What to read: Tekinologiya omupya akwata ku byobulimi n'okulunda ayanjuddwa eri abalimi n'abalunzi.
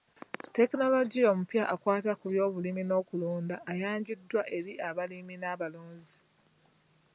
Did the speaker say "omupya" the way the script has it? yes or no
yes